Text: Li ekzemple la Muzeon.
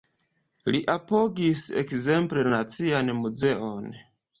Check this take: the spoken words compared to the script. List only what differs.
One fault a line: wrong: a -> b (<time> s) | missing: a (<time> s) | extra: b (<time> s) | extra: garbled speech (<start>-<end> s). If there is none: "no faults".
extra: apogis (0.9 s)
extra: Nacian (2.6 s)